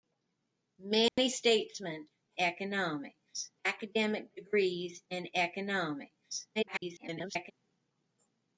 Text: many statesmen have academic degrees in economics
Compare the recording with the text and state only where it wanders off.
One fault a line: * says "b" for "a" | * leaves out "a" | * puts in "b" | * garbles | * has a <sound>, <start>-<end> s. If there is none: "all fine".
* has a dropout, 1.1-1.2 s
* says "economics" for "have"
* garbles